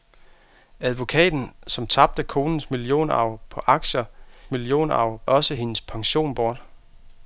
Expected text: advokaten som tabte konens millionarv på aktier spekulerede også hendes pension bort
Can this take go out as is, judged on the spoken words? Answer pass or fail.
fail